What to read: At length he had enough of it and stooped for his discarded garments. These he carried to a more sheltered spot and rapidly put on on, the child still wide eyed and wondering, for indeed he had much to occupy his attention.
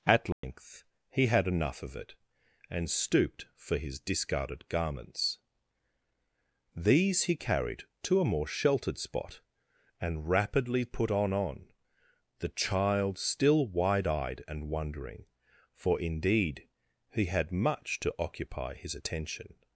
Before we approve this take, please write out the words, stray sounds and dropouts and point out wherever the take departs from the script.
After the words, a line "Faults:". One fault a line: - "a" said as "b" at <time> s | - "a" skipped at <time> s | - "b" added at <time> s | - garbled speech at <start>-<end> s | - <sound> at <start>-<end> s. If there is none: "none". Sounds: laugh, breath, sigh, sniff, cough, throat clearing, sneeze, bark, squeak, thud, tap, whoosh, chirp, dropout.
At length he had enough of it and stooped for his discarded garments. These he carried to a more sheltered spot and rapidly put on on, the child still wide eyed and wondering, for indeed he had much to occupy his attention.
Faults:
- dropout at 0.3-0.4 s